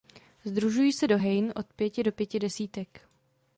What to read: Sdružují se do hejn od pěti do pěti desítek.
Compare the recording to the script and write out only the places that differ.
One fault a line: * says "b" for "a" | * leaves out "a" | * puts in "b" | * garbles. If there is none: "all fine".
all fine